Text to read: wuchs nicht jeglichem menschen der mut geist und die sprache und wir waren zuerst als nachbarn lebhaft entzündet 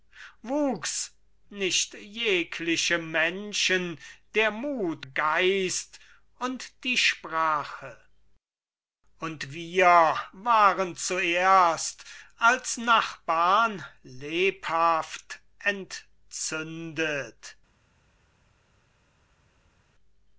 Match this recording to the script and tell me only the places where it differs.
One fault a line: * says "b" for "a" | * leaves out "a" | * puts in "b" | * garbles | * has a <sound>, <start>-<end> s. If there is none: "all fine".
all fine